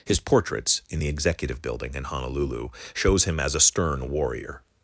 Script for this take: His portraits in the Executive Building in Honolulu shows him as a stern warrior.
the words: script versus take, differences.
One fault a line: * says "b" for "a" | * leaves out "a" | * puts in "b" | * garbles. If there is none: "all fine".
all fine